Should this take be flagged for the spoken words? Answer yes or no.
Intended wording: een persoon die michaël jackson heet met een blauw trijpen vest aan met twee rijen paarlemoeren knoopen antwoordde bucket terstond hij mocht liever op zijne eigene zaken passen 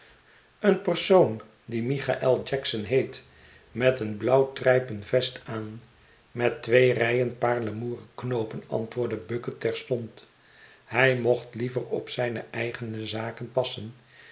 no